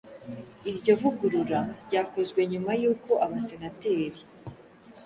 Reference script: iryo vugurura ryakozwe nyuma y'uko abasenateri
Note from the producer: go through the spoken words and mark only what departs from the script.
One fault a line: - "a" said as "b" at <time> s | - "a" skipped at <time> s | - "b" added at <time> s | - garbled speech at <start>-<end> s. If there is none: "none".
none